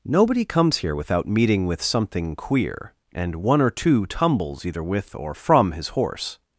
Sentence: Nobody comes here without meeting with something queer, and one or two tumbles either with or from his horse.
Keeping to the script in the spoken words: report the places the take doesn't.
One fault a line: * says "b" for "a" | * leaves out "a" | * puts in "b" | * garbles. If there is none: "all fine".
all fine